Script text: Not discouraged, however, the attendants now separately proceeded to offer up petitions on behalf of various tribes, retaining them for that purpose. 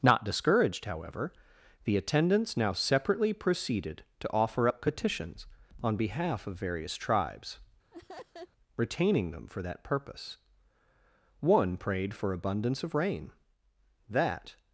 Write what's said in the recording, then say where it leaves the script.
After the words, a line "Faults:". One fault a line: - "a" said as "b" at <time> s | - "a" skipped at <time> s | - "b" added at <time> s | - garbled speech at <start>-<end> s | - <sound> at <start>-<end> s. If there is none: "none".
Not discouraged, however, the attendants now separately proceeded to offer up petitions on behalf of various tribes, retaining them for that purpose. One prayed for abundance of rain, that
Faults:
- laugh at 7.9-8.5 s
- "One prayed for abundance of rain that" added at 11.4 s